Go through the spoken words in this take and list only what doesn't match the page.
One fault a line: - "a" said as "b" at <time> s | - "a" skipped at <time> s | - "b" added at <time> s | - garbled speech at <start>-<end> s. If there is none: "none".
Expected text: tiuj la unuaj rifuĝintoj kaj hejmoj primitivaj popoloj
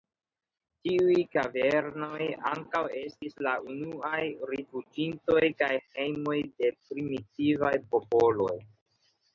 - "kavernoj ankaŭ estis" added at 1.4 s
- "de" added at 6.5 s